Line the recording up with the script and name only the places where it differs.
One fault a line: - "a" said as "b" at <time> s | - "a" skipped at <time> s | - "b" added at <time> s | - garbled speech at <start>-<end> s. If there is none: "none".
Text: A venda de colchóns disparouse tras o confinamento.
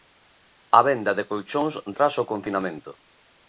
- "disparouse" skipped at 1.7 s